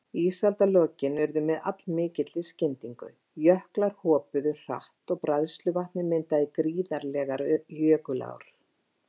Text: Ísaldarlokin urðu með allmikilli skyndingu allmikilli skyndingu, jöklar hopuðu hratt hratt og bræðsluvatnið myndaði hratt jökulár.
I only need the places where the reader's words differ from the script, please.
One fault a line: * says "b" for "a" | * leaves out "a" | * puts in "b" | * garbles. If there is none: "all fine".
* leaves out "allmikilli skyndingu"
* leaves out "hratt"
* says "gríðarlegar" for "hratt"